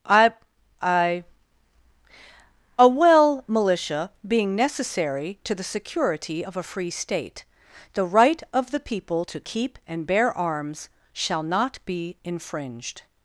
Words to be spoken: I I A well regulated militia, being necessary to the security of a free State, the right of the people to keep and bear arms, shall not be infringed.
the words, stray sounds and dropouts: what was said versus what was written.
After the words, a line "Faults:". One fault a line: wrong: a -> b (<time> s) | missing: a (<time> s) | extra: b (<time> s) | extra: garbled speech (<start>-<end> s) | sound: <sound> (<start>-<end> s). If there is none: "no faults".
I I A well militia, being necessary to the security of a free State, the right of the people to keep and bear arms, shall not be infringed.
Faults:
missing: regulated (3.4 s)